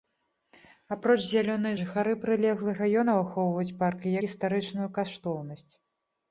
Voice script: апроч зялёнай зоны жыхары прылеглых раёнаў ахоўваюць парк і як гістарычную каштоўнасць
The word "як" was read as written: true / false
false